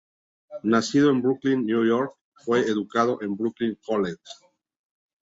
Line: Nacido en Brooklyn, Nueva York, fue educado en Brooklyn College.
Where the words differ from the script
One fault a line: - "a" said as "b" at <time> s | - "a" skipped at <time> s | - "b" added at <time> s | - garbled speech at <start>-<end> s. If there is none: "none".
none